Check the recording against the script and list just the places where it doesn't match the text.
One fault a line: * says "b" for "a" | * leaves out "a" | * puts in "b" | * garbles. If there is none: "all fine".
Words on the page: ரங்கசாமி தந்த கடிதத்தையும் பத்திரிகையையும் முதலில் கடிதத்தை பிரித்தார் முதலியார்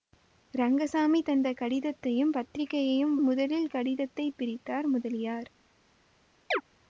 all fine